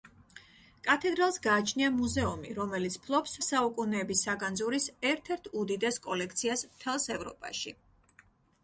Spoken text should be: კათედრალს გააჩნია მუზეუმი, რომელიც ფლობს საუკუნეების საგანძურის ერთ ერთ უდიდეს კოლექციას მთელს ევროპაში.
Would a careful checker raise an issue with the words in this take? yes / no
no